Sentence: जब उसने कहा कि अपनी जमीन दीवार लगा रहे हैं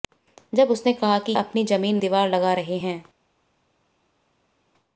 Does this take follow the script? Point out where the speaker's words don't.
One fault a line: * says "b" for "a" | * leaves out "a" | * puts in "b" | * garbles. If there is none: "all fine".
all fine